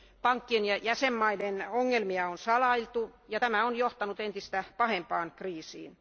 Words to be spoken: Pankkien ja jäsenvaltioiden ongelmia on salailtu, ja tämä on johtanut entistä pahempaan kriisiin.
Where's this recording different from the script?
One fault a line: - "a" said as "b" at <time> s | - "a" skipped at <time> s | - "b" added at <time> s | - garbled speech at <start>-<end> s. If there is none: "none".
none